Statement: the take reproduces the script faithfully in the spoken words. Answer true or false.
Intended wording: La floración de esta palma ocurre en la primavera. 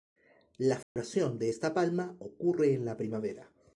true